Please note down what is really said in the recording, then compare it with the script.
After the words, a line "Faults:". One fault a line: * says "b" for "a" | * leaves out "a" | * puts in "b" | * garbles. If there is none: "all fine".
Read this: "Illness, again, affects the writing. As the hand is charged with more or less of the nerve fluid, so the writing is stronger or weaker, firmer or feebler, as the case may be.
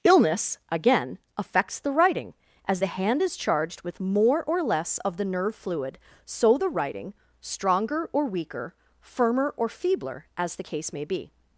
"Illness, again, affects the writing. As the hand is charged with more or less of the nerve fluid, so the writing stronger or weaker, firmer or feebler, as the case may be.
Faults:
* leaves out "is"